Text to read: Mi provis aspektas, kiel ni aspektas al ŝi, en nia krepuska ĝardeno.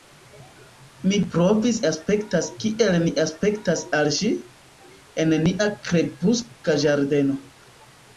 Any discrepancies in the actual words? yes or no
no